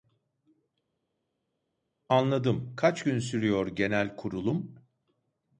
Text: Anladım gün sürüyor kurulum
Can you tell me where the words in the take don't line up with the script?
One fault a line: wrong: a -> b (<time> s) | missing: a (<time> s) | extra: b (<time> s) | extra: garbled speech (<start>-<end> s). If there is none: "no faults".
extra: kaç (2.7 s)
extra: genel (3.7 s)